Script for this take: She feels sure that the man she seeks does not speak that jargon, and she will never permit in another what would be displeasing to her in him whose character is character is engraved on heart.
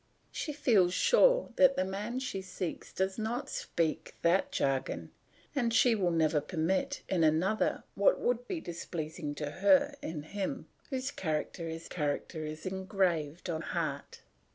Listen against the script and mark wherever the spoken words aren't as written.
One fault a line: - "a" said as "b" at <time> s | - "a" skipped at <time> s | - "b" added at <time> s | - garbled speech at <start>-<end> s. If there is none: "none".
none